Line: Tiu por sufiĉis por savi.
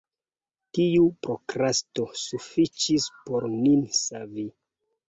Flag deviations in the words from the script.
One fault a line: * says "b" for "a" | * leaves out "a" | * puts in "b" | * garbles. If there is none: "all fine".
* says "prokrasto" for "por"
* puts in "nin"